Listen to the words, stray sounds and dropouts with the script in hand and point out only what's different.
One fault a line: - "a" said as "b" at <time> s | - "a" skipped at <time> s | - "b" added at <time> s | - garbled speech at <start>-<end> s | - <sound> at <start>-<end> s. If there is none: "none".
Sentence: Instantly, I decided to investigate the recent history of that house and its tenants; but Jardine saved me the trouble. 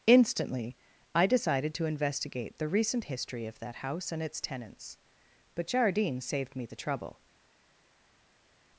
none